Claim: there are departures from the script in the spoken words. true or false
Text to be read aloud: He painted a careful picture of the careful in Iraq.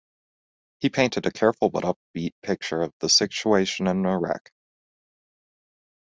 true